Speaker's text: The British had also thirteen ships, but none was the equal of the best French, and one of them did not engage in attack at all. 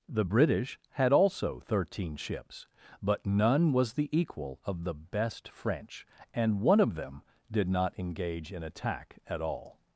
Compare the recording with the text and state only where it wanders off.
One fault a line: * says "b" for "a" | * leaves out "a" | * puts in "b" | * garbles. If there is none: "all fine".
all fine